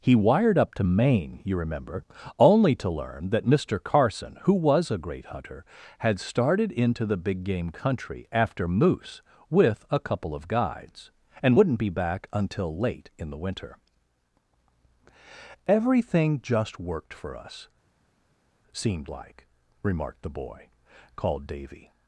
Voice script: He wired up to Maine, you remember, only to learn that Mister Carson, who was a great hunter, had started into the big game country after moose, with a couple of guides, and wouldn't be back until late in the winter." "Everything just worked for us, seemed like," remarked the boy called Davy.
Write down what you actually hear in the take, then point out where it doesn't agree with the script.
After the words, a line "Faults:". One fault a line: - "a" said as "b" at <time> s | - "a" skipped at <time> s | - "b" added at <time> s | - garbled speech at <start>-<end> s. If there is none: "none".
He wired up to Maine, you remember, only to learn that Mister Carson, who was a great hunter, had started into the big game country after moose, with a couple of guides, and wouldn't be back until late in the winter." "Everything just worked for us, seemed like," remarked the boy called Davy.
Faults:
none